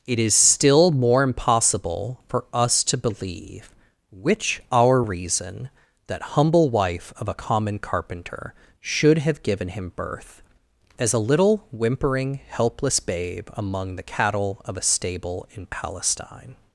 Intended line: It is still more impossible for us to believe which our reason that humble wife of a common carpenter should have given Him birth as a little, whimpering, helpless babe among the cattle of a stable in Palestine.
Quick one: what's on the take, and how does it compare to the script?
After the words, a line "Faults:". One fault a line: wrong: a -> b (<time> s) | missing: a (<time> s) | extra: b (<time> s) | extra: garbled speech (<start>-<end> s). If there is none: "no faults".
It is still more impossible for us to believe which our reason that humble wife of a common carpenter should have given Him birth as a little, whimpering, helpless babe among the cattle of a stable in Palestine.
Faults:
no faults